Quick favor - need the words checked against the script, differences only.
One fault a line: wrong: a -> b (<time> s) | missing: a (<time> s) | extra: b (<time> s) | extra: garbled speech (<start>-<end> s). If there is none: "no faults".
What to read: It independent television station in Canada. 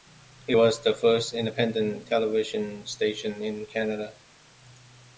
extra: was the first (0.5 s)